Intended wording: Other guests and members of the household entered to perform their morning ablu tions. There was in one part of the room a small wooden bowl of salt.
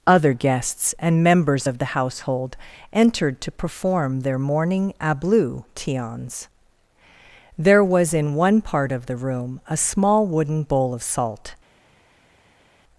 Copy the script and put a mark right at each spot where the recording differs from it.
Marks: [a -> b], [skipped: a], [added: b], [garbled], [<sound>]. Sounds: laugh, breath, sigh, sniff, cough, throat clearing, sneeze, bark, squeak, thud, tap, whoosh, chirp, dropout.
Other guests and members of the household entered to perform their morning ablu tions. There was in one part of the room a small wooden bowl of salt.